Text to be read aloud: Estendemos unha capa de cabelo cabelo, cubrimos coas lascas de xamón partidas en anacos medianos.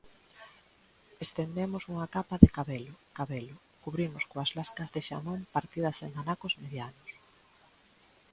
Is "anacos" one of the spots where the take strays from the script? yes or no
no